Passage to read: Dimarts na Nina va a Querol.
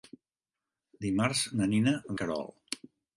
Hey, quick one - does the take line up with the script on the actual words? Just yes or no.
no